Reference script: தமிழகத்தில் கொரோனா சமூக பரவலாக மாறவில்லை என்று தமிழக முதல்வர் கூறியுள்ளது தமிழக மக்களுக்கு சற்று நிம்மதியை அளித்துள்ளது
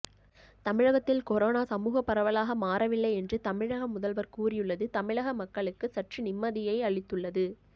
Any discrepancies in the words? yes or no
no